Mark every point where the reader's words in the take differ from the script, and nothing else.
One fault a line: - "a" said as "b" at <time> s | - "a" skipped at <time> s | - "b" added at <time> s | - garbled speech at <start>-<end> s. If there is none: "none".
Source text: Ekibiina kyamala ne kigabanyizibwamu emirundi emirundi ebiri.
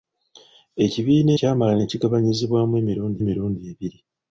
none